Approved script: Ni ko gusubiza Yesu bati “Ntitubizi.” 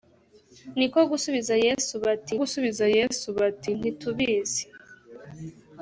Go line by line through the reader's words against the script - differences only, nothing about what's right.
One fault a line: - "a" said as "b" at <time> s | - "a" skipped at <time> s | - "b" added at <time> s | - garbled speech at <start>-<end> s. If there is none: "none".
- "gusubiza Yesu bati" added at 2.4 s